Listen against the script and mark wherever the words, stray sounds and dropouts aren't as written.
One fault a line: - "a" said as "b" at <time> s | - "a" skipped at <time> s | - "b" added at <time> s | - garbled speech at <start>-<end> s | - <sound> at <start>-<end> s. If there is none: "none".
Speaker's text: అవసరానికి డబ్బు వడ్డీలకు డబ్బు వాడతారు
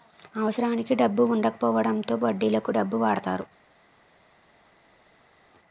- "వుండకపోవడంతో" added at 1.2 s